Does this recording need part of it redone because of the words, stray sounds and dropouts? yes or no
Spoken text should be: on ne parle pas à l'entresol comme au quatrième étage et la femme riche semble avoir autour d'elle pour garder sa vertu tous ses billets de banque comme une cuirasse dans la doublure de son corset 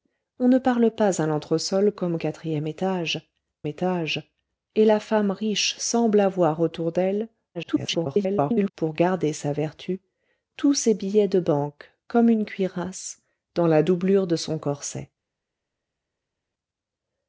yes